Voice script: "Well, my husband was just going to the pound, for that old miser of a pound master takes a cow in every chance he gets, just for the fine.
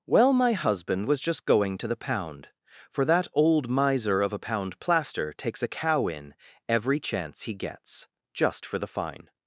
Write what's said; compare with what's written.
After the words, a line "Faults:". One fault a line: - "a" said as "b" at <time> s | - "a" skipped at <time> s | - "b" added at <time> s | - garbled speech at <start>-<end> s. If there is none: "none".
"Well, my husband was just going to the pound, for that old miser of a pound plaster takes a cow in every chance he gets, just for the fine.
Faults:
- "master" said as "plaster" at 4.8 s